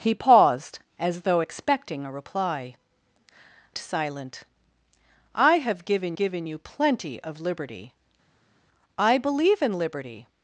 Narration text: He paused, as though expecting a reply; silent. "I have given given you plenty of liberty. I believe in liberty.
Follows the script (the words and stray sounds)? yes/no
yes